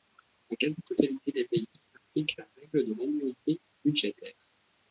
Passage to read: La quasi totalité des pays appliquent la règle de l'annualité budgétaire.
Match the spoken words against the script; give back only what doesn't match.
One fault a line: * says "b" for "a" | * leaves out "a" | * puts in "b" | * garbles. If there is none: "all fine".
all fine